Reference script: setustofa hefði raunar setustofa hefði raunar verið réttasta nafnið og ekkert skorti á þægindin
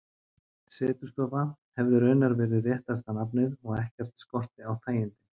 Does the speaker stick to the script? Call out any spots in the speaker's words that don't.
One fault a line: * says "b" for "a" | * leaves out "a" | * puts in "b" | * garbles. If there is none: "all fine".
* leaves out "setustofa hefði raunar"